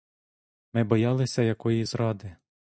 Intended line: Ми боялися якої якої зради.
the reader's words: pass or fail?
fail